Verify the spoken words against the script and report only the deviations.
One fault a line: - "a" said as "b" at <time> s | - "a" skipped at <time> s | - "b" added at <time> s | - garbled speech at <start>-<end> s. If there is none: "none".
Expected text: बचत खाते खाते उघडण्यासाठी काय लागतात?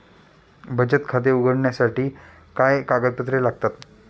- "खाते" skipped at 1.3 s
- "कागदपत्रे" added at 2.8 s